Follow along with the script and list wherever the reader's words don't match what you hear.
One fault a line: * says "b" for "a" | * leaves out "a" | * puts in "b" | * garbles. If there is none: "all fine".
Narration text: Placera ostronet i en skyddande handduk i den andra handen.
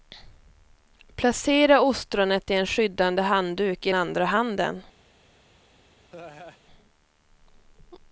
* leaves out "den"